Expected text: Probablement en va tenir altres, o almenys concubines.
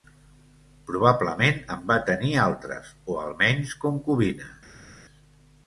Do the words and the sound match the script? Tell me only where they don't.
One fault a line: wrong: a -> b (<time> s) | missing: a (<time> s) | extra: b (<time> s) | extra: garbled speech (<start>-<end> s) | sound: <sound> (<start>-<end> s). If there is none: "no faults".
no faults